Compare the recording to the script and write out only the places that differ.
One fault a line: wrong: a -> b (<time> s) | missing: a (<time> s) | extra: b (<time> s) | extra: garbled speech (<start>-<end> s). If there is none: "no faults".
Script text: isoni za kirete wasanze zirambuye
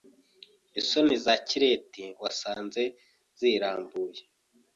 no faults